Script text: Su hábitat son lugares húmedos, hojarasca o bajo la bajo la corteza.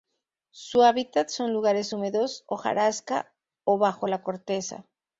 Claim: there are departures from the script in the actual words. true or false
true